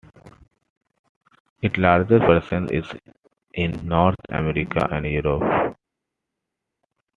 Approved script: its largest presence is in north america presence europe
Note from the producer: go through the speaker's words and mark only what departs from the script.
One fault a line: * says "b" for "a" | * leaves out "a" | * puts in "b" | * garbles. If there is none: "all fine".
* says "and" for "presence"